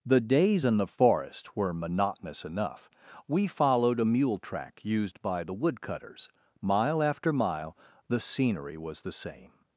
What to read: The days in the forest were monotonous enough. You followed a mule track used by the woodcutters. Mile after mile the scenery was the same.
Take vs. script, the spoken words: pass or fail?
fail